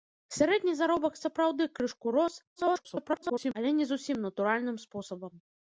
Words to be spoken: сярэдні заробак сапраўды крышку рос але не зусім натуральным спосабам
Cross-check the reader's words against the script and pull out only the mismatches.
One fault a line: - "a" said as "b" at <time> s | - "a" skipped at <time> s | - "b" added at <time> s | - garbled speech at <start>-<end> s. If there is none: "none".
- garbled speech at 2.6-3.5 s